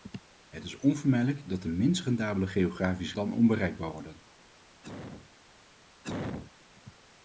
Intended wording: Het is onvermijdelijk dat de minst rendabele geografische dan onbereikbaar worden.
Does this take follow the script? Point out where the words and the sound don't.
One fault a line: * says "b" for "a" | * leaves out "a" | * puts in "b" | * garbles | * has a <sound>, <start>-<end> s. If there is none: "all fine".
* has a cough, 4.8-5.3 s
* has a cough, 6.0-6.5 s